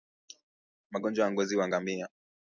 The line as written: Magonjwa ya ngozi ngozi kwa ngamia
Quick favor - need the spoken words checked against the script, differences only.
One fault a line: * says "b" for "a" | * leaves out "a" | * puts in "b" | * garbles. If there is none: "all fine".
* leaves out "ngozi"